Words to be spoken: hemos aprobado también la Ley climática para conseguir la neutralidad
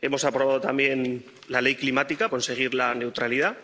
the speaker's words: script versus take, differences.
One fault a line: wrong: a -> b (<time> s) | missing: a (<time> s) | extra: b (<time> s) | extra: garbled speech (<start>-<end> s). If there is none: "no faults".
missing: para (2.3 s)